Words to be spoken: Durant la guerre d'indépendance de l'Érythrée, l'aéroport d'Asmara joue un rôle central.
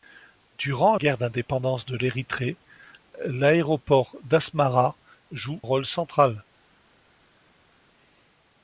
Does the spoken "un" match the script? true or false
false